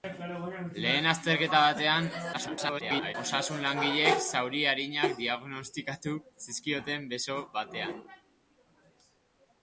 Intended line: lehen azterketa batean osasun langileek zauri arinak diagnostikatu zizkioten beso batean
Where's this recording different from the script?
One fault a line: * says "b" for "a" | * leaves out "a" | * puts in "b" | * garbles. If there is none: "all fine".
* garbles